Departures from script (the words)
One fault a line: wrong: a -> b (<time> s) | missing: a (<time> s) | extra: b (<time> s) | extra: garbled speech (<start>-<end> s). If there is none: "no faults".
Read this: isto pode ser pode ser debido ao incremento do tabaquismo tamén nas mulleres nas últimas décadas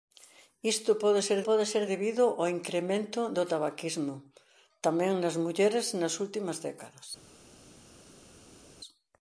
no faults